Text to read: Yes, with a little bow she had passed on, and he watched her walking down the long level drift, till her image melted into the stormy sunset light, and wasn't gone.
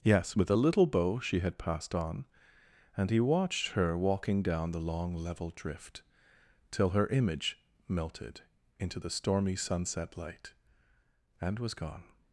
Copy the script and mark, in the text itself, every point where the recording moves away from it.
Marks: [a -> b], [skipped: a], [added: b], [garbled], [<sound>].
Yes, with a little bow she had passed on, and he watched her walking down the long level drift, till her image melted into the stormy sunset light, and [wasn't -> was] gone.